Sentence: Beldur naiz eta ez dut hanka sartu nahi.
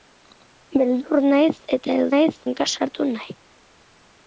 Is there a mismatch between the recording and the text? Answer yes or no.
yes